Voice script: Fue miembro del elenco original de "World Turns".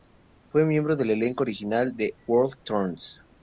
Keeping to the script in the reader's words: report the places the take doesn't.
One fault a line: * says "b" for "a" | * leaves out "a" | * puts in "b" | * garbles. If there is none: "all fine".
all fine